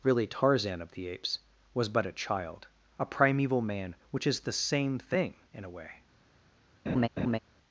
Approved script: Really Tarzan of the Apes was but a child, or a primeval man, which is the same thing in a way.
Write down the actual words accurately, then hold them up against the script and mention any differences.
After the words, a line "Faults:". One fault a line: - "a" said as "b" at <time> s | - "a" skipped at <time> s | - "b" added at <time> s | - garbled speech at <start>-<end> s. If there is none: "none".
Really Tarzan of the Apes was but a child, a primeval man, which is the same thing in a way.
Faults:
- "or" skipped at 2.7 s